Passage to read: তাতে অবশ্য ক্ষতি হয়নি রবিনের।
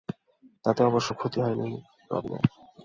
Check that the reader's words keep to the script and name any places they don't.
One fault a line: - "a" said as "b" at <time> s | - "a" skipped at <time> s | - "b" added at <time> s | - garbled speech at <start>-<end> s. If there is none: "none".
none